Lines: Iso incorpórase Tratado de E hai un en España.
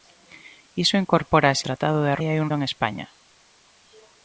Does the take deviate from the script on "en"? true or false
false